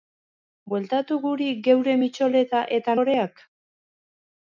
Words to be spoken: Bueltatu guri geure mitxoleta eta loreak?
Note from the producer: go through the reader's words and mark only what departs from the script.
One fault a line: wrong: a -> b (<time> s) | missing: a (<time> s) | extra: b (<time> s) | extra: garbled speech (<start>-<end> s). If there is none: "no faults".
no faults